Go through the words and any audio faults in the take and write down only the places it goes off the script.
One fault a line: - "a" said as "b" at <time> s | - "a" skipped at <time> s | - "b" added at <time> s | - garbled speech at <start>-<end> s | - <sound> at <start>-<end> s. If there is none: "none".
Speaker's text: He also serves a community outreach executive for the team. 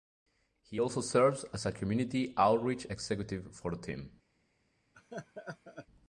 - "as" added at 1.5 s
- laugh at 4.9-5.9 s